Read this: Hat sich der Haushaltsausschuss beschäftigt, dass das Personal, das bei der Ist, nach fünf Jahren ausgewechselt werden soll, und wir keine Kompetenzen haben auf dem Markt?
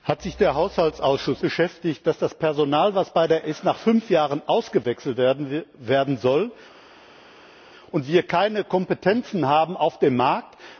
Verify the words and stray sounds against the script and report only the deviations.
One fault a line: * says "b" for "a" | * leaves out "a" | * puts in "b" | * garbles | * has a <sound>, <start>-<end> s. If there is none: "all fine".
all fine